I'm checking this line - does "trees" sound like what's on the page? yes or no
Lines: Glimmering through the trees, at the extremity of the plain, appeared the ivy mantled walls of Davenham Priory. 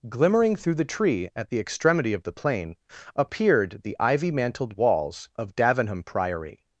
no